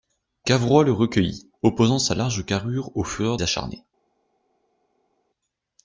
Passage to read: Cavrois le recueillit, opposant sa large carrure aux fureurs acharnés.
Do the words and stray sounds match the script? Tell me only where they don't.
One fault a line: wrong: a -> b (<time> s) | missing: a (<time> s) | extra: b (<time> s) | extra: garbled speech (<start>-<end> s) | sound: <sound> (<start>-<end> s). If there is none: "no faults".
no faults